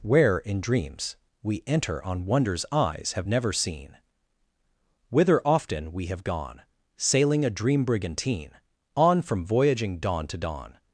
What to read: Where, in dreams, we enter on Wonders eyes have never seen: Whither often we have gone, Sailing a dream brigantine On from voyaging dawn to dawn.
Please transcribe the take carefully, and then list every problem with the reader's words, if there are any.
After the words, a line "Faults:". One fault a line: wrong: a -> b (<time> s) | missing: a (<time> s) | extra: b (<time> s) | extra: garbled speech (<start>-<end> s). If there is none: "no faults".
Where, in dreams, we enter on Wonders eyes have never seen: Whither often we have gone, Sailing a dream brigantine On from voyaging dawn to dawn.
Faults:
no faults